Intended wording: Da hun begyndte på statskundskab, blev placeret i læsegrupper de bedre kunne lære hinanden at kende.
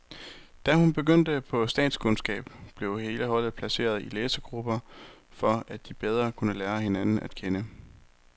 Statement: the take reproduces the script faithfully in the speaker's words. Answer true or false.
false